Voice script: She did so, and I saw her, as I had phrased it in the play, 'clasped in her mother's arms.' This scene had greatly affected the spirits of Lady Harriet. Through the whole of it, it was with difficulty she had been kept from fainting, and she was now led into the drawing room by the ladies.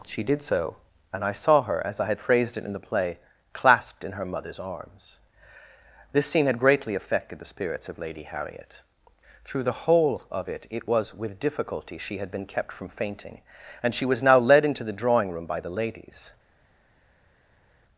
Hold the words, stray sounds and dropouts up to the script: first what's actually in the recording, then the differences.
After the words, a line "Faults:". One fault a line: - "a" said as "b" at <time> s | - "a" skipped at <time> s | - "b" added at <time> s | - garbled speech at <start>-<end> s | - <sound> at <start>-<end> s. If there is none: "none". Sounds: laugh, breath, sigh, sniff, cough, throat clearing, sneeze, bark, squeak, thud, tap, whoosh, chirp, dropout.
She did so, and I saw her, as I had phrased it in the play, 'clasped in her mother's arms.' This scene had greatly affected the spirits of Lady Harriet. Through the whole of it, it was with difficulty she had been kept from fainting, and she was now led into the drawing room by the ladies.
Faults:
none